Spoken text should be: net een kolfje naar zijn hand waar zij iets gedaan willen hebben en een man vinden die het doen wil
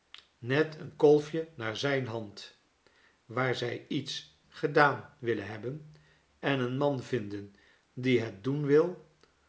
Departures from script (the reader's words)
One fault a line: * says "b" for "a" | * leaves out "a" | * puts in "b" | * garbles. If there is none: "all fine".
all fine